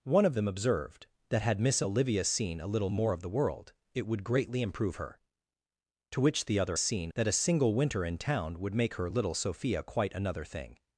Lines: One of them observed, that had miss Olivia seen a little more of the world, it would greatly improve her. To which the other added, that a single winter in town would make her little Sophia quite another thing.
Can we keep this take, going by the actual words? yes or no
no